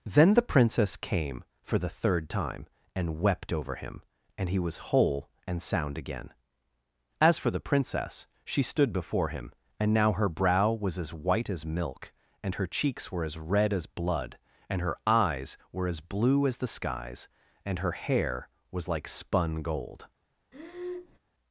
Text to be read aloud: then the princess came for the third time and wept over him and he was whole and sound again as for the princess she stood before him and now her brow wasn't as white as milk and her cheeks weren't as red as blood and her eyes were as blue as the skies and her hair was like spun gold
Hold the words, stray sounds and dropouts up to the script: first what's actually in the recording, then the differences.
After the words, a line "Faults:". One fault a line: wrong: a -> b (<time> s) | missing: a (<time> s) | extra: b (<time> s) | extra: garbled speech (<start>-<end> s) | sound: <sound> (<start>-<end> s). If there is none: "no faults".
then the princess came for the third time and wept over him and he was whole and sound again as for the princess she stood before him and now her brow was as white as milk and her cheeks were as red as blood and her eyes were as blue as the skies and her hair was like spun gold
Faults:
wrong: wasn't -> was (10.7 s)
wrong: weren't -> were (13.1 s)
sound: breath (20.5-21.2 s)